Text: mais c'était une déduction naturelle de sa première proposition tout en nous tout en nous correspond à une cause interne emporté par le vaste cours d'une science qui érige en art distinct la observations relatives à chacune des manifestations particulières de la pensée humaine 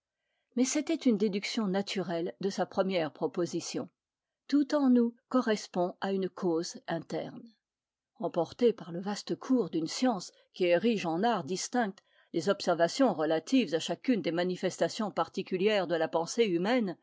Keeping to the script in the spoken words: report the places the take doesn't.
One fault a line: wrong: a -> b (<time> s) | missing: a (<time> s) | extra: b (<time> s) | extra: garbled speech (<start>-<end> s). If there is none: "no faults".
missing: tout en nous (5.2 s)
wrong: la -> les (12.3 s)